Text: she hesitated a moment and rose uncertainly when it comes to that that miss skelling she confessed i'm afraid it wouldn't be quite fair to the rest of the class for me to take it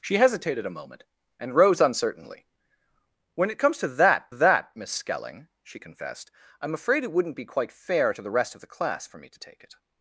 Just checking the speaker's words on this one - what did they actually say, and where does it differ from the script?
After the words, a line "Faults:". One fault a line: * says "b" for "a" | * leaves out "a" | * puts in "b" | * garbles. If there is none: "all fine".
she hesitated a moment and rose uncertainly when it comes to that that miss skelling she confessed i'm afraid it wouldn't be quite fair to the rest of the class for me to take it
Faults:
all fine